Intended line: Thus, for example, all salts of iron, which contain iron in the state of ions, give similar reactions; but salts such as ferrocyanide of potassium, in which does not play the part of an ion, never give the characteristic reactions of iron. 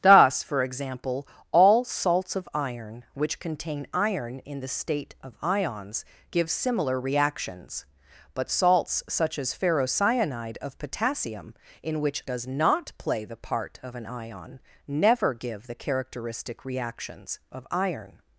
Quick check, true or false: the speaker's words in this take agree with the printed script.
true